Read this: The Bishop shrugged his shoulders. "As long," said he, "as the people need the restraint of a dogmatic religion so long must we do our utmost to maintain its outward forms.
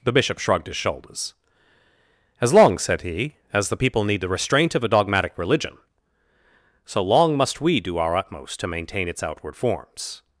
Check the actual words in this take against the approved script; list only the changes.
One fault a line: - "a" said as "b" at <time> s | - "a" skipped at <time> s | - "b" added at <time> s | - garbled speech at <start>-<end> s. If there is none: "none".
none